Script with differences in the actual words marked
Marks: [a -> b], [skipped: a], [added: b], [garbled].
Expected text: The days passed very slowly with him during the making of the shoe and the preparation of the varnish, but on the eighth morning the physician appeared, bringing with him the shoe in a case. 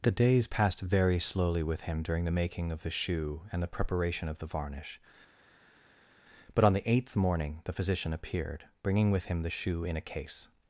The days passed very slowly with him during the making of the shoe and the preparation of the varnish, but on the eighth morning the physician appeared, bringing with him the shoe in a case.